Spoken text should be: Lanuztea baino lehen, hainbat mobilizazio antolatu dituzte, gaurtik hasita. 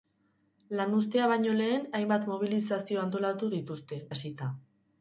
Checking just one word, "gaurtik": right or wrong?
wrong